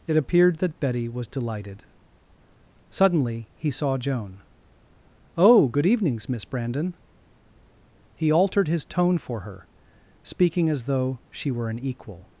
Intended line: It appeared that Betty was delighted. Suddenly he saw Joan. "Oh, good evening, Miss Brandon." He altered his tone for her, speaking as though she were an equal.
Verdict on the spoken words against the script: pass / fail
fail